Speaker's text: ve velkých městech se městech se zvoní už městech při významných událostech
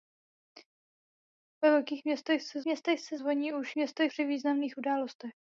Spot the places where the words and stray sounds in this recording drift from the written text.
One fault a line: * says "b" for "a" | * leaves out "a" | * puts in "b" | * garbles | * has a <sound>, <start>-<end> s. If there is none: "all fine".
all fine